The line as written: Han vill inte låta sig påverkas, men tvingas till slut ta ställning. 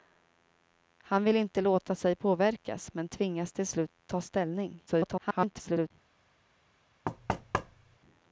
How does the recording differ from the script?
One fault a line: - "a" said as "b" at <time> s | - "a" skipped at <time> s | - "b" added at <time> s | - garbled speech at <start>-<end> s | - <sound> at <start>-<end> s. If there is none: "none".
- garbled speech at 4.9-5.9 s
- thud at 7.0-8.0 s